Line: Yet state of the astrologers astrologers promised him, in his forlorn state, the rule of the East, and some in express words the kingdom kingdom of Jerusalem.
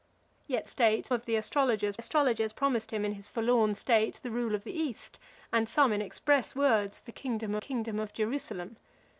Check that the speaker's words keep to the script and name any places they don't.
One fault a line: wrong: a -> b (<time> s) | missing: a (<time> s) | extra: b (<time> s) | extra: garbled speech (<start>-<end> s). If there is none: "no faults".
no faults